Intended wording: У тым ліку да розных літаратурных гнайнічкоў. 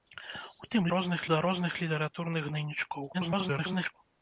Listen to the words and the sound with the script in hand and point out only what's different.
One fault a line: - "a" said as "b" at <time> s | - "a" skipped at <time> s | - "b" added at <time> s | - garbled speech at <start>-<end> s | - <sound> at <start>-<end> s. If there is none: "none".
- "ліку" said as "розных" at 0.9 s
- garbled speech at 3.1-3.9 s